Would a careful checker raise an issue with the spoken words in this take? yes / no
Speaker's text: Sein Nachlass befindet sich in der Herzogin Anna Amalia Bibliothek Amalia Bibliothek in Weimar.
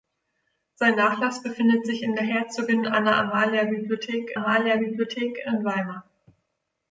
no